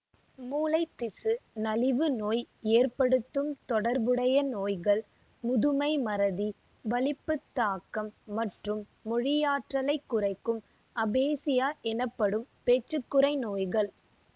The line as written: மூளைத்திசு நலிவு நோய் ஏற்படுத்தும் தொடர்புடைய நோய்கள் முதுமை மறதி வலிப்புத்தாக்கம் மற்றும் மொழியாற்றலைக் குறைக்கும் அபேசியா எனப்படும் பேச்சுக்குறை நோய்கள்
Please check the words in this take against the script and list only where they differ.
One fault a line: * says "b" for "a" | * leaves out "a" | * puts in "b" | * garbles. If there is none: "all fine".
all fine